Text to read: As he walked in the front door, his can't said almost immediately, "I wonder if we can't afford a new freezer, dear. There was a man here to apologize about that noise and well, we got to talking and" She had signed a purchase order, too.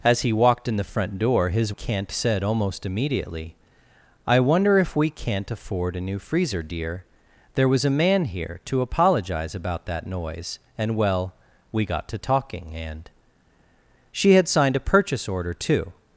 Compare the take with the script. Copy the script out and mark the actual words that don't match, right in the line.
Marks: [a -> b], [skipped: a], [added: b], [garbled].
As he walked in the front door, his can't said almost immediately, "I wonder if we can't afford a new freezer, dear. There was a man here to apologize about that noise and well, we got to talking and" She had signed a purchase order, too.